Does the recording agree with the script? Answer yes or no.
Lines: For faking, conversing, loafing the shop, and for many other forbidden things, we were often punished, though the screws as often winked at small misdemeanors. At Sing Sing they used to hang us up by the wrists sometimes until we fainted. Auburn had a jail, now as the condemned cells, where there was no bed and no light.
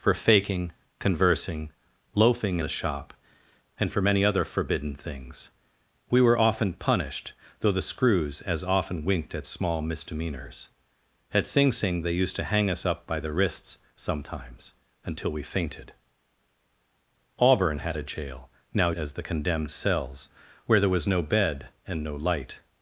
yes